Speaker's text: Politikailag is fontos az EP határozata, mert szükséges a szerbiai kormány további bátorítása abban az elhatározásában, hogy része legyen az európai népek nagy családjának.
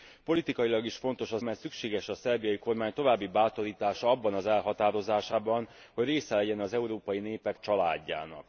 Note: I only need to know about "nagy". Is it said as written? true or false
false